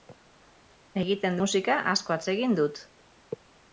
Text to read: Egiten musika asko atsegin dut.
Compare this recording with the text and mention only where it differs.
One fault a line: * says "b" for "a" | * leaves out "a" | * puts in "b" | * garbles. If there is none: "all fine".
all fine